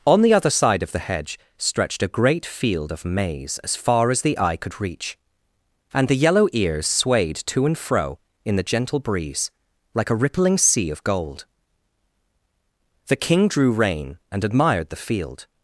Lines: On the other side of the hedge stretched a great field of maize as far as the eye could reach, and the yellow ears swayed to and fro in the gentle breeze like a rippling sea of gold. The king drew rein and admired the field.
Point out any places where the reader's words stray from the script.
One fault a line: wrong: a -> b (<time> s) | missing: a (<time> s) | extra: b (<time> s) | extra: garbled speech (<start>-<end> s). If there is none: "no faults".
no faults